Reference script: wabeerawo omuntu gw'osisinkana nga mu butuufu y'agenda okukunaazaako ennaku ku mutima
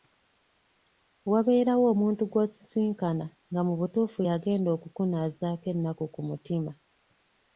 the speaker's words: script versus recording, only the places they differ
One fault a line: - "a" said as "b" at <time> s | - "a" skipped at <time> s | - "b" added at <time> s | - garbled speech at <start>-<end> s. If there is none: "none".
none